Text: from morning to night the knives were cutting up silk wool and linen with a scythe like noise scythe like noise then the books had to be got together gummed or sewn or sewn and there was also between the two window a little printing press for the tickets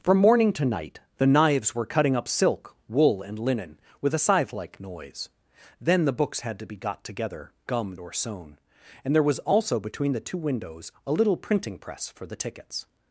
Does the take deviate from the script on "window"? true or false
true